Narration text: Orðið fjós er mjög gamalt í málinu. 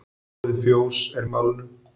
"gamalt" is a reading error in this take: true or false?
true